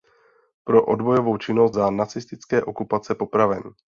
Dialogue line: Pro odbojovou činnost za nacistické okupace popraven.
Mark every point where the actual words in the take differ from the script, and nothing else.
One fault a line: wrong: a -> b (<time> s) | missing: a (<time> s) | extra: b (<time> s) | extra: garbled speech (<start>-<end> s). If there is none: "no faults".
no faults